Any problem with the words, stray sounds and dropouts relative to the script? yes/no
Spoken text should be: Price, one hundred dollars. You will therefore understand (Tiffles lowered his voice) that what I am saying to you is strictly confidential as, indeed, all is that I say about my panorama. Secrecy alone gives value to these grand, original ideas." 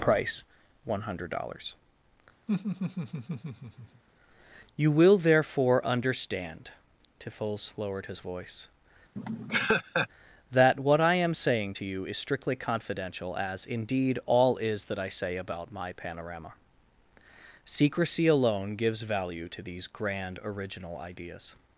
yes